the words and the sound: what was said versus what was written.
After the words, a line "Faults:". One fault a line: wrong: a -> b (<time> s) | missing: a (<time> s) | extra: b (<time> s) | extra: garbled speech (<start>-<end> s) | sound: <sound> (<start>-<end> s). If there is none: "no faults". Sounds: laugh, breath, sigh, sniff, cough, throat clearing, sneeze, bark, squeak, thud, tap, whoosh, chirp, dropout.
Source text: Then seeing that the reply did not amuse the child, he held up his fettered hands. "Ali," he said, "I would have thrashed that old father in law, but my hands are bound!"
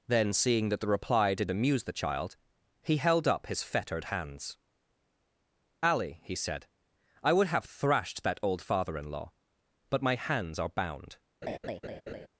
Then seeing that the reply did amuse the child, he held up his fettered hands. "Ali," he said, "I would have thrashed that old father in law, but my hands are bound!"
Faults:
missing: not (1.5 s)
sound: laugh (11.4-12.3 s)